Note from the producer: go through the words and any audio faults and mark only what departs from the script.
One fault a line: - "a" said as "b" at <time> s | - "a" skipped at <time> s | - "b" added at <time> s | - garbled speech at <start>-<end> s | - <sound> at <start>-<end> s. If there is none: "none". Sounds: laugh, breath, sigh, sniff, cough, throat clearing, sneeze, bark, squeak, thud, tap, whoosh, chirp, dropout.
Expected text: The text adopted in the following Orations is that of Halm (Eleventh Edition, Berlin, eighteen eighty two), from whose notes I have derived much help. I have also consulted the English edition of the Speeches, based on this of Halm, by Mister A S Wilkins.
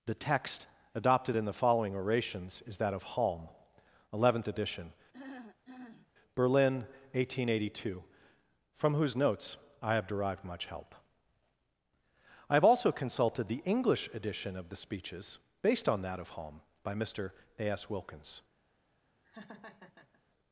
- throat clearing at 5.1-6.1 s
- "this" said as "that" at 16.0 s
- laugh at 19.2-20.2 s